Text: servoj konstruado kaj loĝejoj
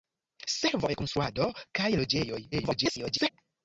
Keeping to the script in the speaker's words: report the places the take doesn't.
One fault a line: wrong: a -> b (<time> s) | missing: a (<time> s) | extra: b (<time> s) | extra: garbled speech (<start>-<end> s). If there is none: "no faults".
extra: garbled speech (2.5-3.3 s)